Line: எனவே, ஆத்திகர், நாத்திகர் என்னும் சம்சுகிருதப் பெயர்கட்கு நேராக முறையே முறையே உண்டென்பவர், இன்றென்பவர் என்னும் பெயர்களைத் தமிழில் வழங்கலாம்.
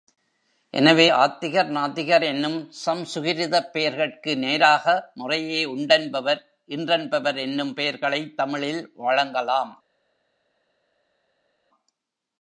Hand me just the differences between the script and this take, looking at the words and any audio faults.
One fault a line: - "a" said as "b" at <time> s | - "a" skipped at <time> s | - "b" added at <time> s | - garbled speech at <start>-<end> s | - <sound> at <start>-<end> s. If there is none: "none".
- "முறையே" skipped at 5.6 s